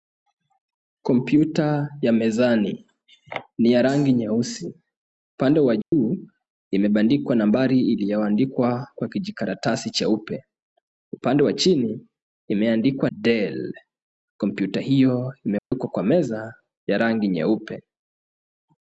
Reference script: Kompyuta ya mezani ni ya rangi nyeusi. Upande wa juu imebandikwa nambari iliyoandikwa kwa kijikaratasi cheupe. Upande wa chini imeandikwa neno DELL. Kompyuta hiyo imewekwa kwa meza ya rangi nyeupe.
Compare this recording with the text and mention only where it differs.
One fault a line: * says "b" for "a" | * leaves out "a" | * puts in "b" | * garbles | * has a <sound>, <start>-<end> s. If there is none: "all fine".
* has a dropout, 5.8-5.9 s
* leaves out "neno"
* has a dropout, 15.6-15.7 s